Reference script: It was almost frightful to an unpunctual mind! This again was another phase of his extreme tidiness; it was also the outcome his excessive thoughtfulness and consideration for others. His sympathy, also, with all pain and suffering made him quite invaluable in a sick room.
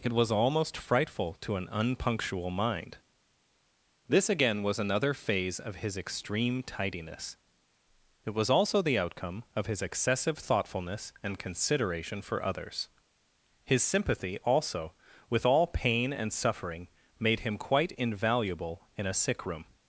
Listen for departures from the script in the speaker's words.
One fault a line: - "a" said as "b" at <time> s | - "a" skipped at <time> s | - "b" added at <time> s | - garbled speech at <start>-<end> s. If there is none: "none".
- "of" added at 9.6 s